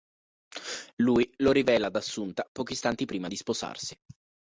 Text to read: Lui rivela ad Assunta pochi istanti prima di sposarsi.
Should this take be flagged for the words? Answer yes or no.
yes